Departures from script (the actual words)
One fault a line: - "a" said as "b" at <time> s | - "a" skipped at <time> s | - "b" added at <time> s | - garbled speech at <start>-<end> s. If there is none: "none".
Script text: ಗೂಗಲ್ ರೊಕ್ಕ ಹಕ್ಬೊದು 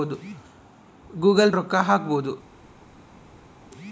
none